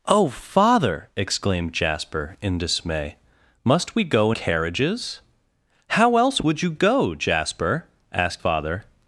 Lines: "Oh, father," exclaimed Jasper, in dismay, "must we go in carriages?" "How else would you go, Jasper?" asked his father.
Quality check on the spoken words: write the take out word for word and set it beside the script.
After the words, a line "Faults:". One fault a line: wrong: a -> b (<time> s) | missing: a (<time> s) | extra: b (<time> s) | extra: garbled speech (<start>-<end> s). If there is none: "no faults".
"Oh, father," exclaimed Jasper, in dismay, "must we go carriages?" "How else would you go, Jasper?" asked father.
Faults:
missing: in (4.3 s)
missing: his (8.4 s)